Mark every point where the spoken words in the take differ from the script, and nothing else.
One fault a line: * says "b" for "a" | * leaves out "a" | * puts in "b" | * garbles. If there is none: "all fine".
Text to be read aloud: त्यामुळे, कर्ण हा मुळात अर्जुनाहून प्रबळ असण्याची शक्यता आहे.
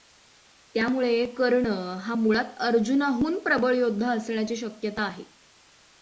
* puts in "योद्धा"